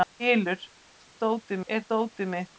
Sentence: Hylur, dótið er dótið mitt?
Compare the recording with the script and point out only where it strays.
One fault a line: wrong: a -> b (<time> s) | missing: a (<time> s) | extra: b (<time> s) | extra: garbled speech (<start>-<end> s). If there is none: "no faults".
no faults